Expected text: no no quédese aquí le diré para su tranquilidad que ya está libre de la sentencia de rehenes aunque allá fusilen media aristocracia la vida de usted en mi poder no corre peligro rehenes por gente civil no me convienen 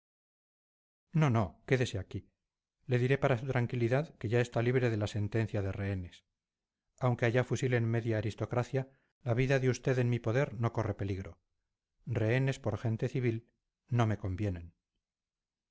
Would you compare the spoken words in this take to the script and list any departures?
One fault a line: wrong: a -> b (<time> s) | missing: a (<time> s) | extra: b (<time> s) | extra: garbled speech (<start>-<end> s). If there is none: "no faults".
no faults